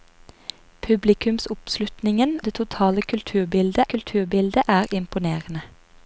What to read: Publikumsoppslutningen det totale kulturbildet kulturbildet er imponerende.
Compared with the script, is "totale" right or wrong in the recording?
right